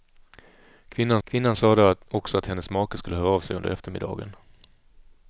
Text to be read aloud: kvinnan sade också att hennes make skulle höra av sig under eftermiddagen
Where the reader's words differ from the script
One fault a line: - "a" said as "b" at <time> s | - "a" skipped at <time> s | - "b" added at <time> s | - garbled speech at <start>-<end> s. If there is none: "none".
- "kvinnan" added at 1.2 s